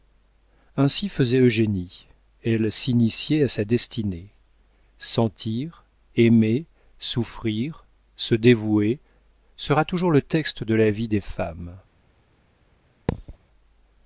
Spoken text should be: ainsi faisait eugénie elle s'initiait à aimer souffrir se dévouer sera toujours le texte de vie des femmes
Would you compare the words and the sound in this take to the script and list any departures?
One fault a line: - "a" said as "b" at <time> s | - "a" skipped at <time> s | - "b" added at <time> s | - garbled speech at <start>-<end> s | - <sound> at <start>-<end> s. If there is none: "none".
- "sa destinée sentir" added at 3.5 s
- "la" added at 10.7 s
- thud at 13.1-13.4 s